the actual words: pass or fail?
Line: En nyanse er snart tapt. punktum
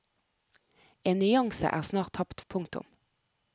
pass